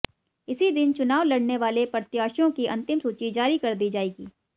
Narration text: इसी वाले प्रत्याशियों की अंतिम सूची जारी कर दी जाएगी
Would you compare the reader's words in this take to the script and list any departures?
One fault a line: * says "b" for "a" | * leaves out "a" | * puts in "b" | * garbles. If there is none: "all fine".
* puts in "दिन चुनाव लड़ने"